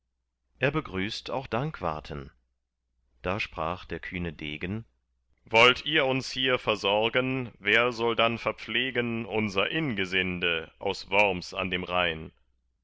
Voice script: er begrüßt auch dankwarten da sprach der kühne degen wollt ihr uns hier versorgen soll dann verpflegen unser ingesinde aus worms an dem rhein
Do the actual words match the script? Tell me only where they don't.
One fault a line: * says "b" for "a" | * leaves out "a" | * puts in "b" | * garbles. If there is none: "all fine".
* puts in "wer"